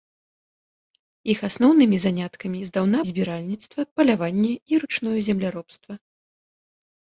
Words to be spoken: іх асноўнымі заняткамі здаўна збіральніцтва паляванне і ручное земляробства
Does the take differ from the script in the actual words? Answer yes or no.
no